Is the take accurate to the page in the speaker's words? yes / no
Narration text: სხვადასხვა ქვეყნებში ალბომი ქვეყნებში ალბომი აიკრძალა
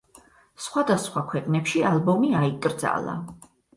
no